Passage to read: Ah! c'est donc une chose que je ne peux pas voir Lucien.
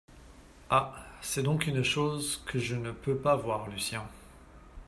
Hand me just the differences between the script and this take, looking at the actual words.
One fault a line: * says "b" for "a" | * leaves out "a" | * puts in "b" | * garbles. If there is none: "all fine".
all fine